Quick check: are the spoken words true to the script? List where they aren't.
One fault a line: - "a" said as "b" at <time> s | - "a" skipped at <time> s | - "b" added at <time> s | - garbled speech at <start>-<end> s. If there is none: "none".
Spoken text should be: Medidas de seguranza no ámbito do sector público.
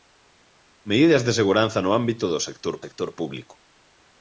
- "sector" added at 2.8 s